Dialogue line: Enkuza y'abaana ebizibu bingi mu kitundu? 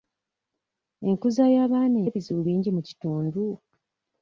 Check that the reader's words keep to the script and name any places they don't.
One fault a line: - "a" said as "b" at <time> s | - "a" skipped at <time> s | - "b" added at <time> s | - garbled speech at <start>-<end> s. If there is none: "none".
none